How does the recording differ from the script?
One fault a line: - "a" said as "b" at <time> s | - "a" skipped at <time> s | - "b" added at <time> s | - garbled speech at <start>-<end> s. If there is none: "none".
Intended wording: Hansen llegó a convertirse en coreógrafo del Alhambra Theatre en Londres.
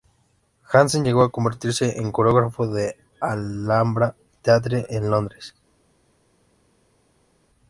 none